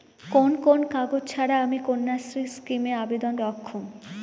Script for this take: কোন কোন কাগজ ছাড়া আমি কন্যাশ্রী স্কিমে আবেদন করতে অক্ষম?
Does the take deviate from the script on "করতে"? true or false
true